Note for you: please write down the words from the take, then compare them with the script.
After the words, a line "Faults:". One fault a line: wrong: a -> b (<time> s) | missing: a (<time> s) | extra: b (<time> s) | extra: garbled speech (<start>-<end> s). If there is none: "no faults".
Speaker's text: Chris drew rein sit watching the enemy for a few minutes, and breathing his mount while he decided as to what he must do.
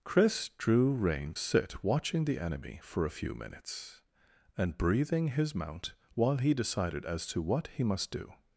Chris drew rein sit watching the enemy for a few minutes, and breathing his mount while he decided as to what he must do.
Faults:
no faults